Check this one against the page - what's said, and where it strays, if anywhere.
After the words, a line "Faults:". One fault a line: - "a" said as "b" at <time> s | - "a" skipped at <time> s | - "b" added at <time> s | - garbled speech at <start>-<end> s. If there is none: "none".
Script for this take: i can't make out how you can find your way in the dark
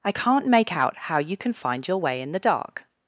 i can't make out how you can find your way in the dark
Faults:
none